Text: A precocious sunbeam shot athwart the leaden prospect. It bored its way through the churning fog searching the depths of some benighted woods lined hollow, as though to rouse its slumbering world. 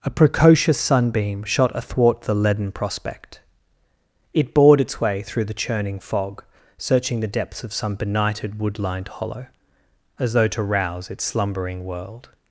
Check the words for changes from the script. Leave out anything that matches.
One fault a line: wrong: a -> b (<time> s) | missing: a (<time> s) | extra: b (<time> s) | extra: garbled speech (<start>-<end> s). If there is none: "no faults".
wrong: woods -> wood (8.6 s)